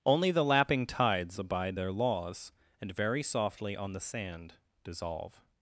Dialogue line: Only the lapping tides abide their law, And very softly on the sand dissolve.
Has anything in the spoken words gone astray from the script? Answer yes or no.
yes